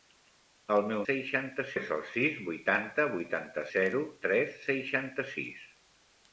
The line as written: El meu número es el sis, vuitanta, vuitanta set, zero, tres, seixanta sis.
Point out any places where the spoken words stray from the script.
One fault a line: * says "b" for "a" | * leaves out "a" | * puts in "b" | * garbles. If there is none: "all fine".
* says "seixanta" for "número"
* leaves out "set"